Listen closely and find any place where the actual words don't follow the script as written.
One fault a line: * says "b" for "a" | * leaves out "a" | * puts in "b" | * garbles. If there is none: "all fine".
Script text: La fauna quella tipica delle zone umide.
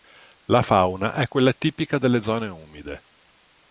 * puts in "è"